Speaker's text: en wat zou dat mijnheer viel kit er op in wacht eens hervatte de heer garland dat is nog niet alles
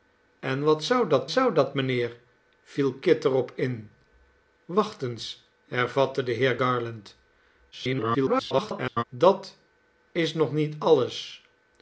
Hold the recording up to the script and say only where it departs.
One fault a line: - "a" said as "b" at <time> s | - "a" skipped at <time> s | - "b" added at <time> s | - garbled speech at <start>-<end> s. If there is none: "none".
- "zou dat" added at 1.3 s
- garbled speech at 7.7-9.0 s